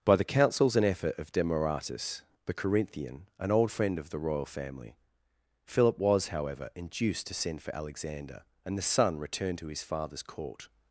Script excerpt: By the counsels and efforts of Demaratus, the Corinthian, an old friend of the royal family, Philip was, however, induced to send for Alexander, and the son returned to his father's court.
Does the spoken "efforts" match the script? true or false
false